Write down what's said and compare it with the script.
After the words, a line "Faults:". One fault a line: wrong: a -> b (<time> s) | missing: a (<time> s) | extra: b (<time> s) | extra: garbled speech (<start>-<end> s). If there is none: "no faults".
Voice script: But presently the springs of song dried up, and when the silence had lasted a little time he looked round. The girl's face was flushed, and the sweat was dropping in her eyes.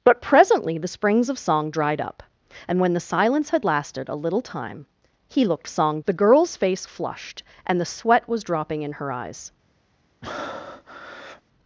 But presently the springs of song dried up, and when the silence had lasted a little time he looked song. The girl's face flushed, and the sweat was dropping in her eyes.
Faults:
wrong: round -> song (5.7 s)
missing: was (6.9 s)